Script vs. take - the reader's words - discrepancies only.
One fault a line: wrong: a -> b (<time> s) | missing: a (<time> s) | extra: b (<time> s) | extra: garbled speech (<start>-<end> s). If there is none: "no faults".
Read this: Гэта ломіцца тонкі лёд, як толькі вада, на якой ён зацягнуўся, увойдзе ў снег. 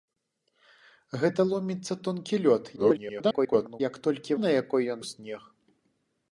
extra: garbled speech (2.8-3.8 s)
missing: вада (4.4 s)
missing: зацягнуўся увойдзе (5.0 s)